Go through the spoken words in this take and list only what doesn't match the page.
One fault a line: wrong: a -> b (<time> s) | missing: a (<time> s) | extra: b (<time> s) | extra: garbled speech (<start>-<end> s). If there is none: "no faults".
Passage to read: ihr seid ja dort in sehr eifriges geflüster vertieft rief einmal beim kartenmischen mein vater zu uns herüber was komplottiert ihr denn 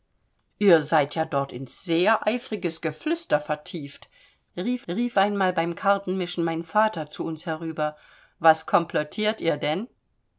extra: rief (4.9 s)